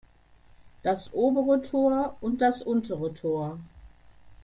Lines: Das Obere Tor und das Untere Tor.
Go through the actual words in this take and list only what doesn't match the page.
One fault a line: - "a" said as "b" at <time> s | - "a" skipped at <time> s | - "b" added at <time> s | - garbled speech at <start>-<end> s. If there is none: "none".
none